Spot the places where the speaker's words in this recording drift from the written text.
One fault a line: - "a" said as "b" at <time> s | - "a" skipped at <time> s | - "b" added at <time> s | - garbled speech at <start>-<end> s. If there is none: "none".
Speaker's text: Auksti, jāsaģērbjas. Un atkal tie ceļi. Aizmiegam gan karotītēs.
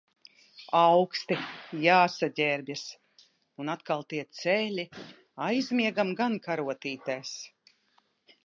none